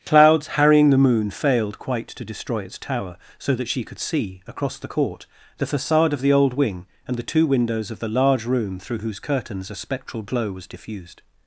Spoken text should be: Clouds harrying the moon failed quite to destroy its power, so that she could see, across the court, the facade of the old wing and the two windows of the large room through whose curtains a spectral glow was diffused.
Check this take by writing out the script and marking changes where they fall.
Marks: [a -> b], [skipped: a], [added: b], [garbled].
Clouds harrying the moon failed quite to destroy its [power, -> tower] so that she could see, across the court, the facade of the old wing and the two windows of the large room through whose curtains a spectral glow was diffused.